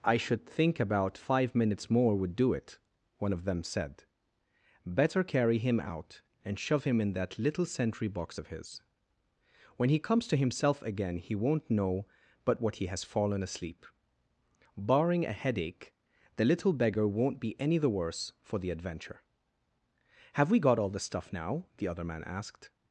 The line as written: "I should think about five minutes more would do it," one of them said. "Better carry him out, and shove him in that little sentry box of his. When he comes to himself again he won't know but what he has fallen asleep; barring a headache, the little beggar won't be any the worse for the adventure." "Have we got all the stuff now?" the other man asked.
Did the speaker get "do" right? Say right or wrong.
right